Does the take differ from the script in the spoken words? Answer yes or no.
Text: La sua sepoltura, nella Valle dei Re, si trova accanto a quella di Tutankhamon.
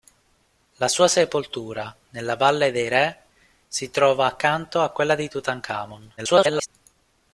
yes